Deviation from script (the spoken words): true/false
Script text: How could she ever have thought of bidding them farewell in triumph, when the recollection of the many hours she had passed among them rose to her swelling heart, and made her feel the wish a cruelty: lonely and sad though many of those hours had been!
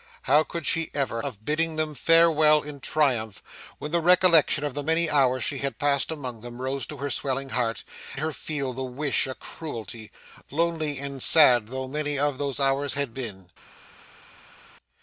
true